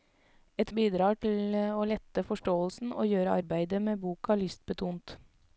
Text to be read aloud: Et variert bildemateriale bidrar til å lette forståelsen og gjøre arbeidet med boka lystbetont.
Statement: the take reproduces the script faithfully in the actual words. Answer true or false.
false